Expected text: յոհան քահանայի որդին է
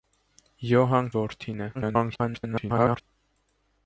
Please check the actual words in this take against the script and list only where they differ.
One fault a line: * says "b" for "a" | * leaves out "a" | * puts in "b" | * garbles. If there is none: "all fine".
* leaves out "քահանայի"
* garbles